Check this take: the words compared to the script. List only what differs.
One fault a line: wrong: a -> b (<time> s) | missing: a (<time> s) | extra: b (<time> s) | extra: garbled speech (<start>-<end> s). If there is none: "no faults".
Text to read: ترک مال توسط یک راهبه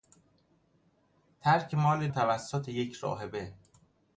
no faults